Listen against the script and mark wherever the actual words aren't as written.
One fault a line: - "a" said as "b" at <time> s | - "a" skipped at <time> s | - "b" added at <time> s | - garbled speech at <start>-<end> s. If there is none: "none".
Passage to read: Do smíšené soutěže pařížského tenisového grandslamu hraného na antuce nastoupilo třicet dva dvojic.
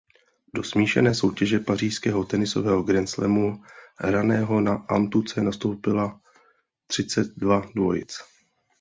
none